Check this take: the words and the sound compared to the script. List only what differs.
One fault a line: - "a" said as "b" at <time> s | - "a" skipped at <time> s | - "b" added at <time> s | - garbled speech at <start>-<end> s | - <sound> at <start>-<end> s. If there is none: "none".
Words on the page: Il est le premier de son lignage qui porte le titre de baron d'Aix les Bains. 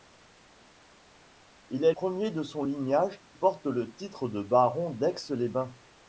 - "le" skipped at 1.9 s
- "qui" skipped at 3.2 s